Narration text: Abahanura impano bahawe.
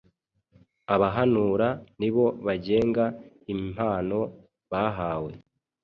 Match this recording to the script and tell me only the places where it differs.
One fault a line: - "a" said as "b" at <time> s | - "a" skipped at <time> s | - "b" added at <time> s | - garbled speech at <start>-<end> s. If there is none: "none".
- "nibo bagenga" added at 2.0 s